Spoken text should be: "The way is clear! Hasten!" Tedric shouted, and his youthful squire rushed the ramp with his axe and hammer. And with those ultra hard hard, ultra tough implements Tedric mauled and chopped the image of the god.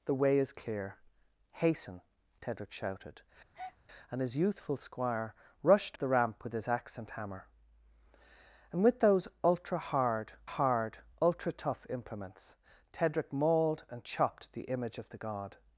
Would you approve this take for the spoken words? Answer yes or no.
yes